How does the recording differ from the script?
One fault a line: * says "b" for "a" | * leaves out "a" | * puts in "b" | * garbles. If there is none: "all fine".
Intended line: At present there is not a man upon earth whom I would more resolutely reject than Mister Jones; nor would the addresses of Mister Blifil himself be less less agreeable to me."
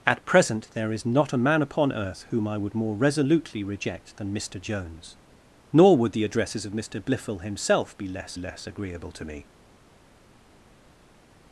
all fine